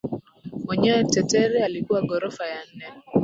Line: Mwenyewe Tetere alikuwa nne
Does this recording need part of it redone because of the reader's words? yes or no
yes